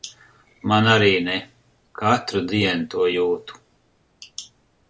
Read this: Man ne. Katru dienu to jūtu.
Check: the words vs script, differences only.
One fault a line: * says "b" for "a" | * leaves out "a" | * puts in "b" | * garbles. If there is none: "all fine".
* puts in "arī"